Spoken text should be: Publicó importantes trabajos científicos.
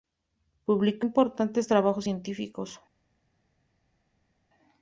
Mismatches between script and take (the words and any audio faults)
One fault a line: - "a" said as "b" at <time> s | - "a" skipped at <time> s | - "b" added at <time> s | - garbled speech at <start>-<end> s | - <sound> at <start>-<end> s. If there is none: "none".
none